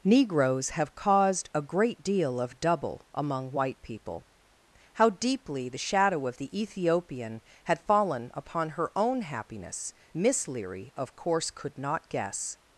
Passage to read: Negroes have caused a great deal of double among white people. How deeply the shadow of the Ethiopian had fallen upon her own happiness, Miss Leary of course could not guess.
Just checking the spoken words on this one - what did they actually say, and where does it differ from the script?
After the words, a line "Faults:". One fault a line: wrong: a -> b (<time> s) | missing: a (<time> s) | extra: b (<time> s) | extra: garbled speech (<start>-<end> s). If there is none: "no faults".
Negroes have caused a great deal of double among white people. How deeply the shadow of the Ethiopian had fallen upon her own happiness, Miss Leary of course could not guess.
Faults:
no faults